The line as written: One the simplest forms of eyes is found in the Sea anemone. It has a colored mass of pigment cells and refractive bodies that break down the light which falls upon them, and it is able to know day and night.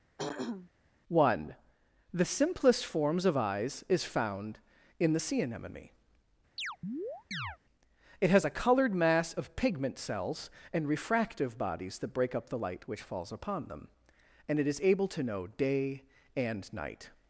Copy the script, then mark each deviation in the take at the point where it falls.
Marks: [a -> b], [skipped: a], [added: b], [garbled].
One the simplest forms of eyes is found in the Sea anemone. It has a colored mass of pigment cells and refractive bodies that break [down -> up] the light which falls upon them, and it is able to know day and night.